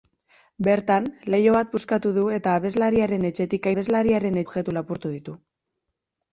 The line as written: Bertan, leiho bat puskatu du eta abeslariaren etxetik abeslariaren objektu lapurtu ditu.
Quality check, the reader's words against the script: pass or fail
pass